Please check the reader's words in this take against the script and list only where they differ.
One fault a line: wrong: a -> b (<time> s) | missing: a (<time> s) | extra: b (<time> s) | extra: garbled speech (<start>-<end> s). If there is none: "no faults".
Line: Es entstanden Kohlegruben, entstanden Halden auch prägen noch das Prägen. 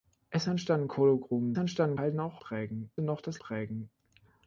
no faults